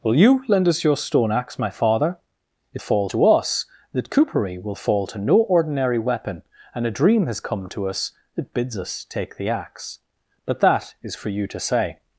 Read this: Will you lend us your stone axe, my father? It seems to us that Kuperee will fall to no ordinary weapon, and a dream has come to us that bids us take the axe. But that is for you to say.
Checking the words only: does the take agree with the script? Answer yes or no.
no